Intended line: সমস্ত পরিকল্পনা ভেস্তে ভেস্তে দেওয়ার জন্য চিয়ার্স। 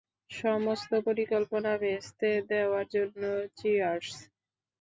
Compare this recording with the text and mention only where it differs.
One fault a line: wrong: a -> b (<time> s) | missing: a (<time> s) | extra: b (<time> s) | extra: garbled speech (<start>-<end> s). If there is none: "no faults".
missing: ভেস্তে (2.3 s)